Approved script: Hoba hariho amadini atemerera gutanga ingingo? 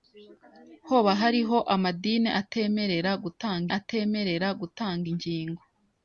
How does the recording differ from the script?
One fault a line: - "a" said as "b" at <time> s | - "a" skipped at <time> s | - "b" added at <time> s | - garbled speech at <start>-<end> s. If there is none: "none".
- "atemerera gutanga" added at 3.8 s